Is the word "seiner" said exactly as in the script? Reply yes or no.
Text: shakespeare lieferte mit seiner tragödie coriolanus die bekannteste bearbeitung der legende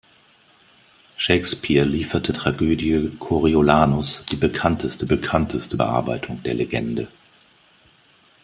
no